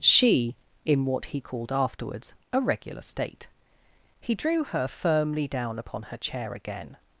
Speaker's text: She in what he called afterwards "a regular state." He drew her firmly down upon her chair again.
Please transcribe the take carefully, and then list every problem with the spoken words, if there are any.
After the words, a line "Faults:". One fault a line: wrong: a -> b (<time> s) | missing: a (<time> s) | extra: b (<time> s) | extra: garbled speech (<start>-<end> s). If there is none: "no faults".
She in what he called afterwards "a regular state." He drew her firmly down upon her chair again.
Faults:
no faults